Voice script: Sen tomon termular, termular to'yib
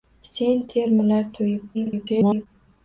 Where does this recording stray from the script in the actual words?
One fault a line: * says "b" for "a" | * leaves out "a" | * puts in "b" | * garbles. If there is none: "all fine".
* leaves out "tomon termular"
* garbles